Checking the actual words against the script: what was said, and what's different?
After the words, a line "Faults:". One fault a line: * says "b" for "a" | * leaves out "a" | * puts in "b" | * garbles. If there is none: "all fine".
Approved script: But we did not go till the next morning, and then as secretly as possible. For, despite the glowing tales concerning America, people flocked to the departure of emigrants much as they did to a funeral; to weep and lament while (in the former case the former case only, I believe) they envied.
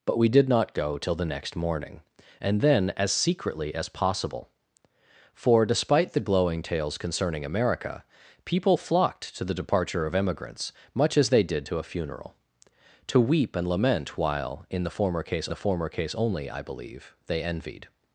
But we did not go till the next morning, and then as secretly as possible. For, despite the glowing tales concerning America, people flocked to the departure of emigrants much as they did to a funeral; to weep and lament while (in the former case the former case only, I believe) they envied.
Faults:
all fine